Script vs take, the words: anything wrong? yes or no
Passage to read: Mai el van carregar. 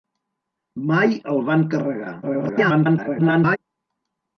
yes